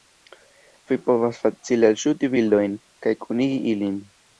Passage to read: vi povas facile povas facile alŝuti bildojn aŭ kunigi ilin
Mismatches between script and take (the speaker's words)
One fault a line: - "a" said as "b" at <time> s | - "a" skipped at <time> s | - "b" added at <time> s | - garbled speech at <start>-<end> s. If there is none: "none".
- "povas facile" skipped at 1.9 s
- "aŭ" said as "kaj" at 3.1 s